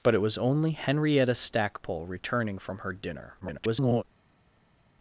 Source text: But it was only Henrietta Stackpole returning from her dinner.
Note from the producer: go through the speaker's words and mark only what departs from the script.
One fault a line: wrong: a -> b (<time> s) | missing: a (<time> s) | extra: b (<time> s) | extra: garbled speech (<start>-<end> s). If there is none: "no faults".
extra: garbled speech (3.4-4.0 s)